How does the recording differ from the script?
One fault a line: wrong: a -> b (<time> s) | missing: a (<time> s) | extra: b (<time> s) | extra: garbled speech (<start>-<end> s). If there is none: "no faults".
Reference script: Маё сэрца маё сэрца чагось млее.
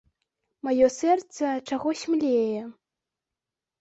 missing: маё сэрца (1.5 s)